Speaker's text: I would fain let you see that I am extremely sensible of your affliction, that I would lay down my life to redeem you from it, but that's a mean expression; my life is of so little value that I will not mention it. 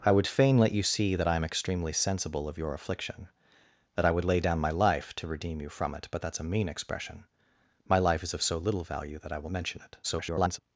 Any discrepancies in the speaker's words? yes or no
yes